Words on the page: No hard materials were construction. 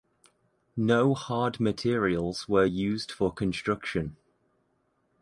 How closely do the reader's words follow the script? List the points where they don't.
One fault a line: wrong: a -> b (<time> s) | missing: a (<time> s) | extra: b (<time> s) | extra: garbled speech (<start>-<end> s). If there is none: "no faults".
extra: used for (2.6 s)